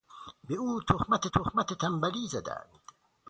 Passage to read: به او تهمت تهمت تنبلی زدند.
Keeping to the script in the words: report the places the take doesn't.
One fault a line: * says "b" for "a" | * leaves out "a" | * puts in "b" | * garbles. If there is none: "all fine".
all fine